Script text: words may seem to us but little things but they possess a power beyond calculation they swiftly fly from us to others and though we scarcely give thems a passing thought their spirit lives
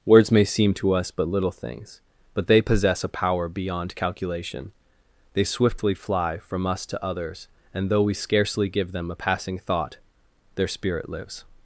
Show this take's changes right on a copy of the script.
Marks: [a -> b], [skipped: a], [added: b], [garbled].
words may seem to us but little things but they possess a power beyond calculation they swiftly fly from us to others and though we scarcely give [thems -> them] a passing thought their spirit lives